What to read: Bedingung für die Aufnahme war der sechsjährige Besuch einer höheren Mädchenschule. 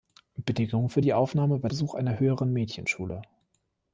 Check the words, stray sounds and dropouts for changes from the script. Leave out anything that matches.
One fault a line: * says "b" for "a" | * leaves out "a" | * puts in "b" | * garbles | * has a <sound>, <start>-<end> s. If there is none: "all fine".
* leaves out "der sechsjährige"